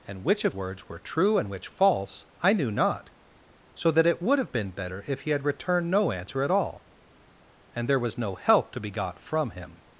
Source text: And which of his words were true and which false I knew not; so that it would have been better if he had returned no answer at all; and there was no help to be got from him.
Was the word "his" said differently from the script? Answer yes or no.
yes